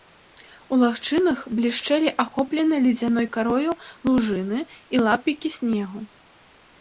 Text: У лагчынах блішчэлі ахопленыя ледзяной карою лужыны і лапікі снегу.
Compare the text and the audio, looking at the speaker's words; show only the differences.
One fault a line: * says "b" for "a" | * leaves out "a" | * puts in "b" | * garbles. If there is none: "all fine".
all fine